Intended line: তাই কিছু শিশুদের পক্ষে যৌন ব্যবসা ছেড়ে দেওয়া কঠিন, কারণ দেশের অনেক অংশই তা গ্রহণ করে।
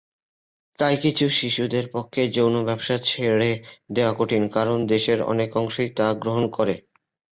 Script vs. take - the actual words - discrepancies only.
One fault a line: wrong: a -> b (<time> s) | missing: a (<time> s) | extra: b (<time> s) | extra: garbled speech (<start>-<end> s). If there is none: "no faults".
no faults